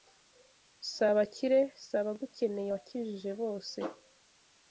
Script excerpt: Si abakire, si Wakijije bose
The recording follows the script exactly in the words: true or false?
false